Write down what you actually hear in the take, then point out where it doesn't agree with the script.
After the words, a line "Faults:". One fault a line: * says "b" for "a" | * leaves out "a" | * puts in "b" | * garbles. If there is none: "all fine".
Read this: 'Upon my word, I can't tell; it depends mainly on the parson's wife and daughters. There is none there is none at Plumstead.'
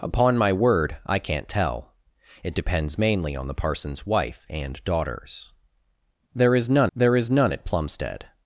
'Upon my word, I can't tell; it depends mainly on the parson's wife and daughters. There is none there is none at Plumstead.'
Faults:
all fine